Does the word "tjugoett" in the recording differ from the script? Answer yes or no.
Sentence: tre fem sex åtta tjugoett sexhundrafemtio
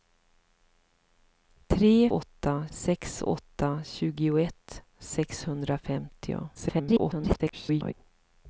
no